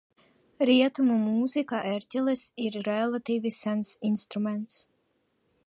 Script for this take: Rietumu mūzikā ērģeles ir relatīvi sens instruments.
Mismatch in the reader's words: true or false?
false